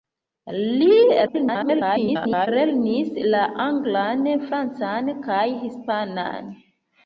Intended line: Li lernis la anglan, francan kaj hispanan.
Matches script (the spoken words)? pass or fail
fail